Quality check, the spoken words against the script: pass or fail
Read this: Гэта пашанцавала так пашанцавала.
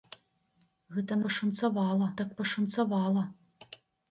pass